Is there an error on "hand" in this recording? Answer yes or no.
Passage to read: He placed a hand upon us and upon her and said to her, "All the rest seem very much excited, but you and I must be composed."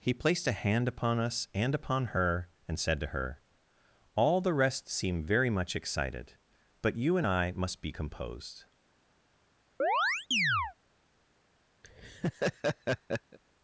no